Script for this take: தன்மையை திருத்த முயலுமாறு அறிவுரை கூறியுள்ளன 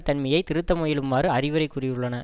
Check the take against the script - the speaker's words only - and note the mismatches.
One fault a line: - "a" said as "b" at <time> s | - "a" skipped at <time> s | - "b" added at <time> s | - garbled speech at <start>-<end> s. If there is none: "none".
none